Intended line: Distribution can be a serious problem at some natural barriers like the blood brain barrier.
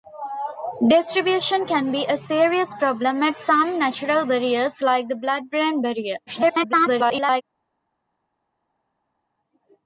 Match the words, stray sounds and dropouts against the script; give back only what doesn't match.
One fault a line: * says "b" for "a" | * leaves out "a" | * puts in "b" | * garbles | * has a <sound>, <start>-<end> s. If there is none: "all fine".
* garbles